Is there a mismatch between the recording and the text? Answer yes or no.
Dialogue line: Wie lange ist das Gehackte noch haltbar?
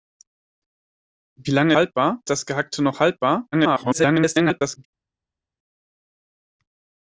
yes